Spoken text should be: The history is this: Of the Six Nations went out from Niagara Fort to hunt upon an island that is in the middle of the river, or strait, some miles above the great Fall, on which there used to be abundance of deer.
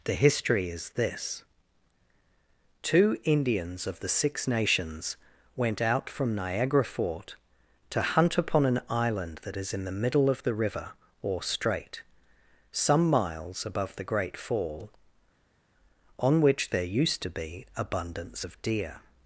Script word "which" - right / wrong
right